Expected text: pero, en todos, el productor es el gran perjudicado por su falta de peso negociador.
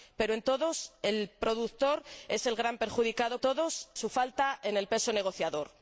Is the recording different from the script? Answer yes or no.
yes